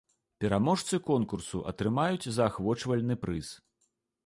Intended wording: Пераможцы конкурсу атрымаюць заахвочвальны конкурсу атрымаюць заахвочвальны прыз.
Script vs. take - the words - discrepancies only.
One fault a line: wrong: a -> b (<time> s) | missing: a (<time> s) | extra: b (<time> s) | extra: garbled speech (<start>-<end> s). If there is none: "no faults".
missing: конкурсу атрымаюць заахвочвальны (3.1 s)